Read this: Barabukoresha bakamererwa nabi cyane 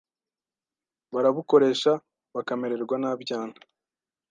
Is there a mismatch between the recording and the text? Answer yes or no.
no